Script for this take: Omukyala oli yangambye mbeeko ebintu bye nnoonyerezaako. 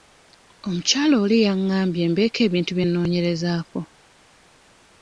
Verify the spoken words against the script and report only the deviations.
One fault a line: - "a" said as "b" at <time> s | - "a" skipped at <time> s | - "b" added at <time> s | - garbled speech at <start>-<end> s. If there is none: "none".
none